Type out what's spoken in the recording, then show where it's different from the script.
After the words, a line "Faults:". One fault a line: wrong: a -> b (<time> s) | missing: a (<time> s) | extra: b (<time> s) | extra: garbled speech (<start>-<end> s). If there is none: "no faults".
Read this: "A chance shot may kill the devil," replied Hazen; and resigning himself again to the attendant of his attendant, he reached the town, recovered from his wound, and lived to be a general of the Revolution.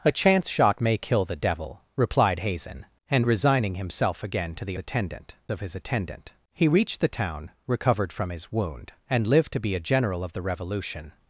"A chance shot may kill the devil," replied Hazen; and resigning himself again to the attendant of his attendant, he reached the town, recovered from his wound, and lived to be a general of the Revolution.
Faults:
no faults